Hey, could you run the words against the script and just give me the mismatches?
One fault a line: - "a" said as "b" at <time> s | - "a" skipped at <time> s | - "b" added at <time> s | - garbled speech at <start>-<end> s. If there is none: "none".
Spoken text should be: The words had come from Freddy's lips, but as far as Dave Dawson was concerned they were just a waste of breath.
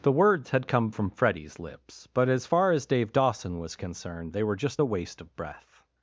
none